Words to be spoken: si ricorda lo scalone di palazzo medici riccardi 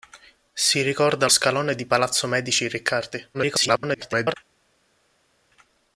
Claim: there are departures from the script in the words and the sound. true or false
true